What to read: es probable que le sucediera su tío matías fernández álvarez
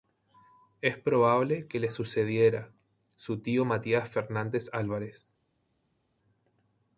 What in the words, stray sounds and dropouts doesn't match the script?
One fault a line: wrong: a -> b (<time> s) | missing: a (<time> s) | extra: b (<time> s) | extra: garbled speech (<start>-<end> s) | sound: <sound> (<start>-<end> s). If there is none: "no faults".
no faults